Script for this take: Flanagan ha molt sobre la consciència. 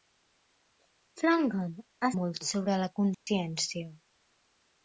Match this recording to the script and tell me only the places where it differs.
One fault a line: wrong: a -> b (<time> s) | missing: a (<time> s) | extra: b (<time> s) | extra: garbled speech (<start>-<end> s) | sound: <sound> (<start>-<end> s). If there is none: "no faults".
sound: dropout (3.1-3.3 s)